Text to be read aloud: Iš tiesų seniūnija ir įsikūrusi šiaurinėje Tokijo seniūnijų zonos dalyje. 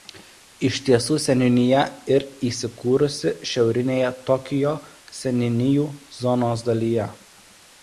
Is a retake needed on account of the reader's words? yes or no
no